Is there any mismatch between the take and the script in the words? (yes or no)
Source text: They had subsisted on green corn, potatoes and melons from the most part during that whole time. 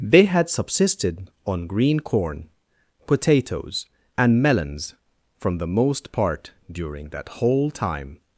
no